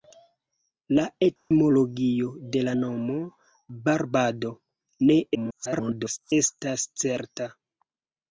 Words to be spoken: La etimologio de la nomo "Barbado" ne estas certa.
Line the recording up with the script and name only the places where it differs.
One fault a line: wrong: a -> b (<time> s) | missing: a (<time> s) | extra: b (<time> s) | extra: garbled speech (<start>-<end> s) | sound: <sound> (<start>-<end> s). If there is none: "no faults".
sound: dropout (1.4-1.5 s)
extra: garbled speech (5.3-6.3 s)